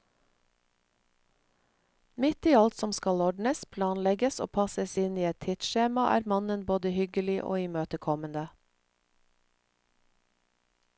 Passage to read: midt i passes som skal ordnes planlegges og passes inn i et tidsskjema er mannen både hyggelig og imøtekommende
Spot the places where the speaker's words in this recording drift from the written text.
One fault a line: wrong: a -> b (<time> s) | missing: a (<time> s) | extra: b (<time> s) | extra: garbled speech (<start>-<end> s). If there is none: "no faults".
wrong: passes -> alt (2.5 s)